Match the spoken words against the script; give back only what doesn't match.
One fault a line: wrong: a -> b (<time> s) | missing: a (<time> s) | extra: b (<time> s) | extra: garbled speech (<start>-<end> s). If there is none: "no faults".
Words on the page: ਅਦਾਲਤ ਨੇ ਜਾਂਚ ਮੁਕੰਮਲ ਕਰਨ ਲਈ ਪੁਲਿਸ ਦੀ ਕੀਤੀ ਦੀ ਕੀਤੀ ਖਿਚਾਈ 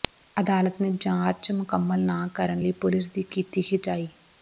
extra: ਨਾ (2.0 s)
missing: ਦੀ ਕੀਤੀ (3.6 s)